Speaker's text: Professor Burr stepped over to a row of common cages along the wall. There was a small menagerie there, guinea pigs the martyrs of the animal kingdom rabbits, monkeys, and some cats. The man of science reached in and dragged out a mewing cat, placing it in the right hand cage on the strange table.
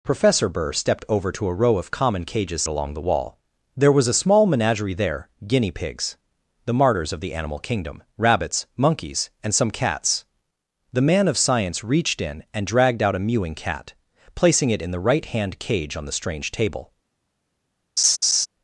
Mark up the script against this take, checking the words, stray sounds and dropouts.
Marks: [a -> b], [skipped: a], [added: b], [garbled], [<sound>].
Professor Burr stepped over to a row of common cages along the wall. There was a small menagerie there, guinea pigs the martyrs of the animal kingdom rabbits, monkeys, and some cats. The man of science reached in and dragged out a mewing cat, placing it in the right hand cage on the strange table. [laugh]